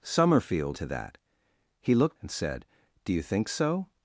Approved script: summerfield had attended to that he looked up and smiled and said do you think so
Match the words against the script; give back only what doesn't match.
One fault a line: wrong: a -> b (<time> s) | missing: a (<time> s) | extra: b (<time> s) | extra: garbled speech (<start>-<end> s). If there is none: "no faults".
missing: had attended (0.8 s)
missing: up and smiled (2.2 s)